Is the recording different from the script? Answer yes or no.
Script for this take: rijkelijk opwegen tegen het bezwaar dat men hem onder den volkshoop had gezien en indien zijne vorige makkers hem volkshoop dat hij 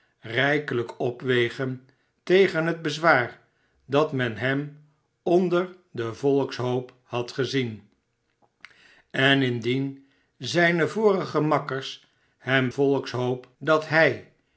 no